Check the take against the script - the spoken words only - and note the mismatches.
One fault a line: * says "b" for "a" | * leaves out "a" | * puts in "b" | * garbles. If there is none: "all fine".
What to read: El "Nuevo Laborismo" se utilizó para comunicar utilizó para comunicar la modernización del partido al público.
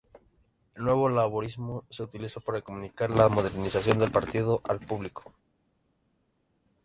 * leaves out "utilizó para comunicar"